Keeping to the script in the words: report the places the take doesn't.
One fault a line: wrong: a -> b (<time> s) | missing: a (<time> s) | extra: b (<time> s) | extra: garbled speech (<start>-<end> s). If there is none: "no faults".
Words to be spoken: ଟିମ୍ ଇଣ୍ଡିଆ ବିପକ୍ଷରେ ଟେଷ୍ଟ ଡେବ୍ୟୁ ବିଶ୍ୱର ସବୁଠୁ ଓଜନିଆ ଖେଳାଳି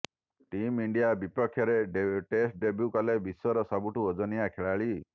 extra: କଲେ (2.9 s)